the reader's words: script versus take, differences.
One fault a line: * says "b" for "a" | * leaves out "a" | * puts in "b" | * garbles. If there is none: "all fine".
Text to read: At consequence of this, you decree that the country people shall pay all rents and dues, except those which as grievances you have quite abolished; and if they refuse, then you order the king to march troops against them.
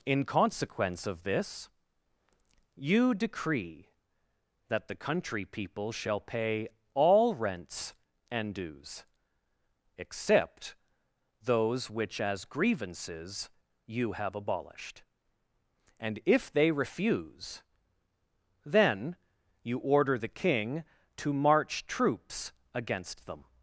* says "In" for "At"
* leaves out "quite"